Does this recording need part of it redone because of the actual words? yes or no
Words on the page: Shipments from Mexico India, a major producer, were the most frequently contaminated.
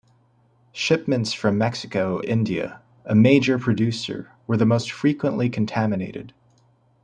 no